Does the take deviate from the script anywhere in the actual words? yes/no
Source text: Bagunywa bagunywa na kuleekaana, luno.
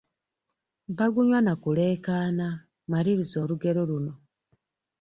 yes